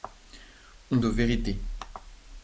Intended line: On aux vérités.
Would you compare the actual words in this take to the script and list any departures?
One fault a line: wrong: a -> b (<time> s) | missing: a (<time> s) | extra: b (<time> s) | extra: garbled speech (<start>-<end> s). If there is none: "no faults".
no faults